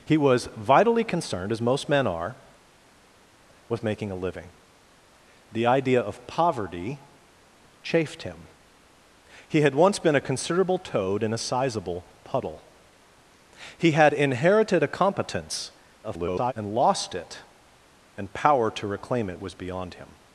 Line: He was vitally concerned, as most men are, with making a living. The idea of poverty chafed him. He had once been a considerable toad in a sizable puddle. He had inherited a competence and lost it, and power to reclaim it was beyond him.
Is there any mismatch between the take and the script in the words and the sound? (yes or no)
yes